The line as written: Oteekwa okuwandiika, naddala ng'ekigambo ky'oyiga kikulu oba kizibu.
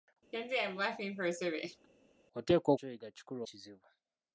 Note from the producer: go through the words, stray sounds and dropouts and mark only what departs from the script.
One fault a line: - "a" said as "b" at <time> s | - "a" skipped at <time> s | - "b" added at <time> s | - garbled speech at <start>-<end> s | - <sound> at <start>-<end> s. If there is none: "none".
- laugh at 0.3-1.9 s
- "okuwandiika naddala ng'ekigambo" skipped at 2.7 s
- "oba" skipped at 3.4 s